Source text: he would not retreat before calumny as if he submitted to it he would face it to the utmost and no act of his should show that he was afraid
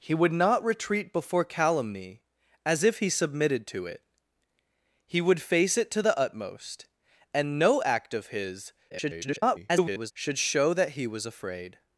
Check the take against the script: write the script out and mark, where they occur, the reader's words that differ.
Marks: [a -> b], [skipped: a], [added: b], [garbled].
he would not retreat before calumny as if he submitted to it he would face it to the utmost and no act of his [garbled] should show that he was afraid